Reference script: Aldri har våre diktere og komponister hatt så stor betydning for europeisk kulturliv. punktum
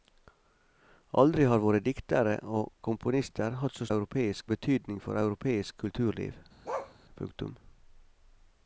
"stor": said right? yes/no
no